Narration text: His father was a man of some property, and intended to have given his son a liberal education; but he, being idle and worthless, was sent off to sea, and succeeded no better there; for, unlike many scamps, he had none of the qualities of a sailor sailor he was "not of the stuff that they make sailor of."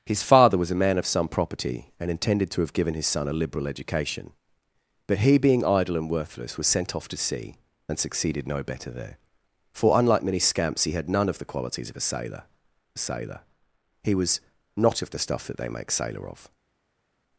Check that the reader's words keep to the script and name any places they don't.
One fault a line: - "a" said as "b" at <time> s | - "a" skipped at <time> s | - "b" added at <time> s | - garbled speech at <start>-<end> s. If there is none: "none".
none